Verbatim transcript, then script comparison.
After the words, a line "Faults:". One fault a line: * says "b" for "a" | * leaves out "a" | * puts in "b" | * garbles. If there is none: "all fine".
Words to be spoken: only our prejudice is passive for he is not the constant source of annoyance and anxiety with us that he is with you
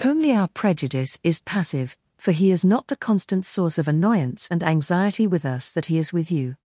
only our prejudice is passive for he is not the constant source of annoyance and anxiety with us that he is with you
Faults:
all fine